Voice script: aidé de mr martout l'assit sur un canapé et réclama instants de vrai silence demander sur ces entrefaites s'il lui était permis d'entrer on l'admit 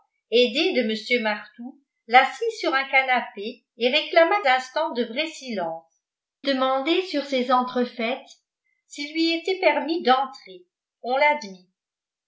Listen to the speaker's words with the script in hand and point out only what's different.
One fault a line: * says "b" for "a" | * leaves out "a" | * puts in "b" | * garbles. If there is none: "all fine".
all fine